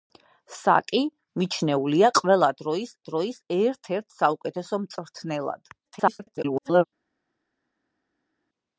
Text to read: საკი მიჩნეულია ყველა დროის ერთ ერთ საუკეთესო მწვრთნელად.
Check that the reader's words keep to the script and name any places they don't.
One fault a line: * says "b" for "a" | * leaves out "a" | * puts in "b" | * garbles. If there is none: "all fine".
* puts in "დროის"
* garbles